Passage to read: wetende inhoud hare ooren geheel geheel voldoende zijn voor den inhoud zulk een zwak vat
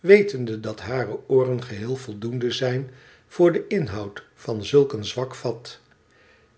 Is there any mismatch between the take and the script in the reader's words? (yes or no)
yes